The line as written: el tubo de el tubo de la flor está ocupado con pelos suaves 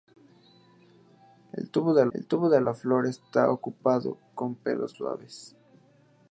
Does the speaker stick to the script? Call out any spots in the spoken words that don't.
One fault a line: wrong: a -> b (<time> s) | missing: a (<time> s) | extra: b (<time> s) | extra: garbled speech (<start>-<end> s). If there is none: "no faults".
no faults